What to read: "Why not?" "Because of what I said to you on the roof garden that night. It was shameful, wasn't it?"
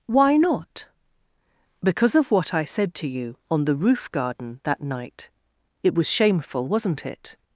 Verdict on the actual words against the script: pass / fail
pass